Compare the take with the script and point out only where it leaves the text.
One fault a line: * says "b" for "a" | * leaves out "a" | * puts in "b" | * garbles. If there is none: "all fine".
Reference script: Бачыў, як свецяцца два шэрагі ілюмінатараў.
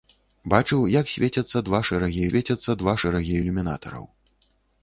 * puts in "свецяцца два шэрагі"